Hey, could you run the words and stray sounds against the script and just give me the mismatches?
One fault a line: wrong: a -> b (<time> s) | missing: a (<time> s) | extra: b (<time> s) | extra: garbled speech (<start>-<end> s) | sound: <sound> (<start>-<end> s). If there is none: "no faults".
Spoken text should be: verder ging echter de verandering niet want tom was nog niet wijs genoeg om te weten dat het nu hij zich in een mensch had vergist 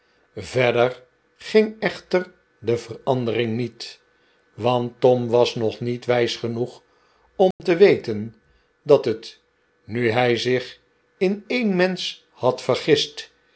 sound: dropout (7.5-7.6 s)